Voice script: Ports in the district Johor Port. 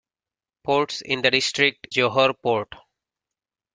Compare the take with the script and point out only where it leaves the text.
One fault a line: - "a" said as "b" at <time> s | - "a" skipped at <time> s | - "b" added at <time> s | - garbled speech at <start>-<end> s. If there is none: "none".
none